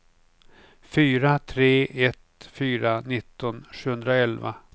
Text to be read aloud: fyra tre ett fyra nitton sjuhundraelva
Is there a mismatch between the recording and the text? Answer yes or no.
no